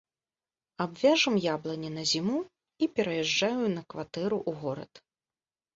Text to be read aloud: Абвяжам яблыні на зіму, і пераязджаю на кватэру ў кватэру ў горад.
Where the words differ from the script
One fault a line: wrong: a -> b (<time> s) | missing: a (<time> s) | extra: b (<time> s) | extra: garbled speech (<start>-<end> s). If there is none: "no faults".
missing: кватэру ў (4.7 s)